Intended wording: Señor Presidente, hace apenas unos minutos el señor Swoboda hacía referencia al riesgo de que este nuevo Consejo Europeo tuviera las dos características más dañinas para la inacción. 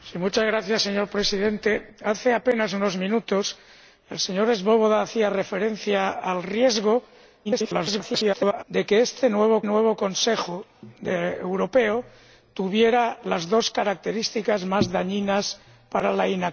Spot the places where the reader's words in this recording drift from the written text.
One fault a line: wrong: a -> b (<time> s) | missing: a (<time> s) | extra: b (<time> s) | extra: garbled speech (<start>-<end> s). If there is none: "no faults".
extra: garbled speech (7.4-8.6 s)
extra: nuevo (9.6 s)